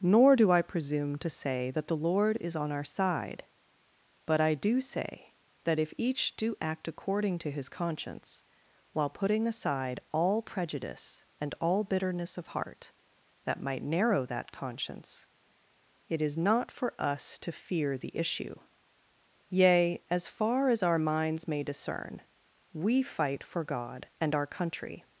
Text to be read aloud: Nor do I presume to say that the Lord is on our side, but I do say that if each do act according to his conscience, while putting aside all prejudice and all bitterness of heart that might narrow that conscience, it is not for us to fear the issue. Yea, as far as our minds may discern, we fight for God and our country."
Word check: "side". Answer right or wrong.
right